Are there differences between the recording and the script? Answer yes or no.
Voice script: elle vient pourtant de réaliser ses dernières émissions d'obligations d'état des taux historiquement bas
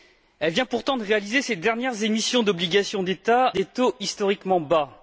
no